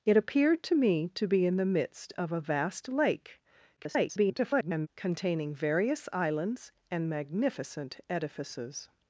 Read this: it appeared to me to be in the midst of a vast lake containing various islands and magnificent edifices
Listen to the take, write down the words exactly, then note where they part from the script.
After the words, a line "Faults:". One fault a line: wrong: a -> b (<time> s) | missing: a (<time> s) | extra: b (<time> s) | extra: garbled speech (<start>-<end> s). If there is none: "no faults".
it appeared to me to be in the midst of a vast lake [garbled] containing various islands and magnificent edifices
Faults:
extra: garbled speech (3.8-4.9 s)